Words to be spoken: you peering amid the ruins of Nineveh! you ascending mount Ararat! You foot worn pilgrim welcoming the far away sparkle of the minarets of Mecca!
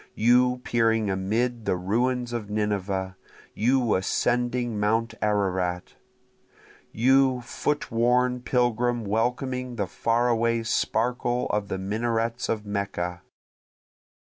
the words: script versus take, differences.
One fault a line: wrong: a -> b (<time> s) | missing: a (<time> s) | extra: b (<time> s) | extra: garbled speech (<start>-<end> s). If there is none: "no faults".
no faults